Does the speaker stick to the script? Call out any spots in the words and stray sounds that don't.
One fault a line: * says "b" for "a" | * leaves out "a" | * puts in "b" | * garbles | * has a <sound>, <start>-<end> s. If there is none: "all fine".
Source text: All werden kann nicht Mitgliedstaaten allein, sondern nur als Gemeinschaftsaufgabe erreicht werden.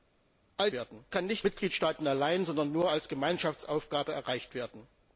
all fine